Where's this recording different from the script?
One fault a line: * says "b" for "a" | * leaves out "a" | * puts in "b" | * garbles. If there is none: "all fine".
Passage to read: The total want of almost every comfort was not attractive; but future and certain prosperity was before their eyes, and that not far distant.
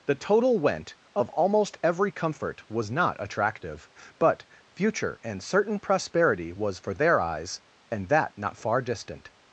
* says "went" for "want"
* says "for" for "before"